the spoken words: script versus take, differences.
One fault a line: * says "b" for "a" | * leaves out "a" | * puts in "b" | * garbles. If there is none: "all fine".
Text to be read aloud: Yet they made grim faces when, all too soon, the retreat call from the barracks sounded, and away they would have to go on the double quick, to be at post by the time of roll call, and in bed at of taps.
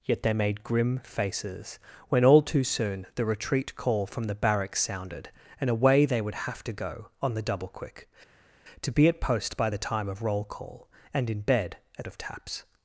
all fine